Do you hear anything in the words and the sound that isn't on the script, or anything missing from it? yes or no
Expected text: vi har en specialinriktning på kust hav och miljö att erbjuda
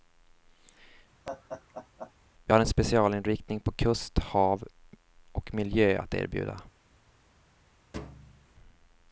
yes